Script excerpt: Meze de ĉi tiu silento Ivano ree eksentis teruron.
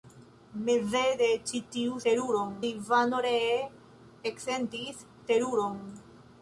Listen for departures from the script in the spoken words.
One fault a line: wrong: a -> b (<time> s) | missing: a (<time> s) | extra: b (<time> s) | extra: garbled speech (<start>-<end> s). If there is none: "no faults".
wrong: silento -> teruron (2.1 s)